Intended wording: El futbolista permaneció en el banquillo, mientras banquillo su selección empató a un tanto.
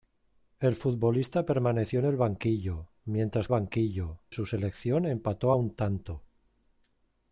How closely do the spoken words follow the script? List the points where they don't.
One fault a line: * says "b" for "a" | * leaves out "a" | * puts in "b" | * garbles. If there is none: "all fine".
all fine